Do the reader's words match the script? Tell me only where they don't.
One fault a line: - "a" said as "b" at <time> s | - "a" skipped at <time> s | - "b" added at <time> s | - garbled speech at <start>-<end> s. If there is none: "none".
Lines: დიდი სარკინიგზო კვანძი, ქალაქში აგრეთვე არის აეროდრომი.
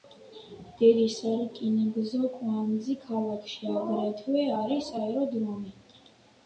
none